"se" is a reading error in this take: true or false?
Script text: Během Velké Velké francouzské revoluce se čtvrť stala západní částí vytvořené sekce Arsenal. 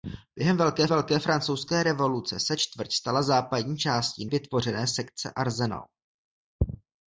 false